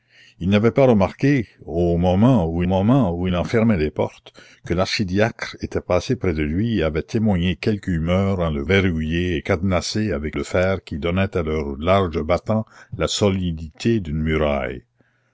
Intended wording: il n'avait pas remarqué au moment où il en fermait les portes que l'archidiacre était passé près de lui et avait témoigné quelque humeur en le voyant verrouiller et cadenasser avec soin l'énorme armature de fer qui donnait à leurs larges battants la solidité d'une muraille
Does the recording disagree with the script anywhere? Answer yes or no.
yes